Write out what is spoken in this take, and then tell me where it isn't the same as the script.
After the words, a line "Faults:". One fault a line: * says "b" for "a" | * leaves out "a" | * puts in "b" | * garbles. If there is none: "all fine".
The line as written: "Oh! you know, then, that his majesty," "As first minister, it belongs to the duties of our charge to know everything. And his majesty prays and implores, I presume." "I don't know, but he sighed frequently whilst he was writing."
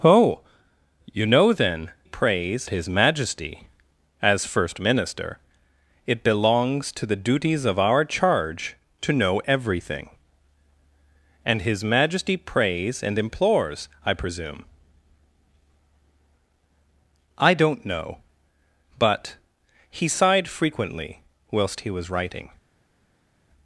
"Oh! you know, then, prays his majesty," "As first minister, it belongs to the duties of our charge to know everything. And his majesty prays and implores, I presume." "I don't know, but he sighed frequently whilst he was writing."
Faults:
* says "prays" for "that"